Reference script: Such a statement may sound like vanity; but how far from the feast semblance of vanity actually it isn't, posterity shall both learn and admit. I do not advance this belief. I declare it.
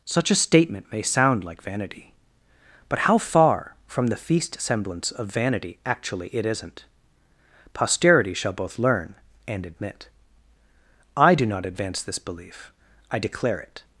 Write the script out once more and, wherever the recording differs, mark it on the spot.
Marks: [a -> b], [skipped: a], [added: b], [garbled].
Such a statement may sound like vanity; but how far from the feast semblance of vanity actually it isn't, posterity shall both learn and admit. I do not advance this belief. I declare it.